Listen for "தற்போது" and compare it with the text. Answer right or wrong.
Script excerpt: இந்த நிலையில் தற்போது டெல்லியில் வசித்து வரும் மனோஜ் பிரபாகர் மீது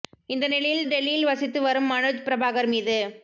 wrong